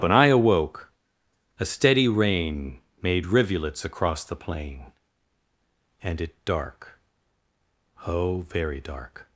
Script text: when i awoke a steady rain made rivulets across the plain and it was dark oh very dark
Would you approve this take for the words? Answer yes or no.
no